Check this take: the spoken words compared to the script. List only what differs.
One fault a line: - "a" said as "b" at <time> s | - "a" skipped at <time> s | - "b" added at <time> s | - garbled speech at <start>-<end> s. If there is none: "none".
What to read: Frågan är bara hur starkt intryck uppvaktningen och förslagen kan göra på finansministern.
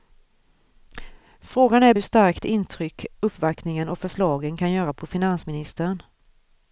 - "bara" skipped at 1.9 s